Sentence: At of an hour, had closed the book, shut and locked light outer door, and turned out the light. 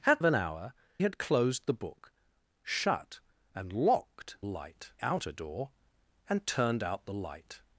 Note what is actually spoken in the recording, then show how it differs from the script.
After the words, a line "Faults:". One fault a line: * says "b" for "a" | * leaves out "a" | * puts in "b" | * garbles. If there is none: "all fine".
At of an hour, had closed the book, shut and locked light outer door, and turned out the light.
Faults:
all fine